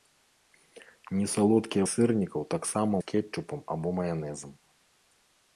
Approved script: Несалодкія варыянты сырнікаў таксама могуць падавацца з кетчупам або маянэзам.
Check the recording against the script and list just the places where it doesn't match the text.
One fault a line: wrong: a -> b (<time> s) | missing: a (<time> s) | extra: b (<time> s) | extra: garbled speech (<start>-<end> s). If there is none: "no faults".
missing: варыянты (1.8 s)
missing: могуць падавацца (3.0 s)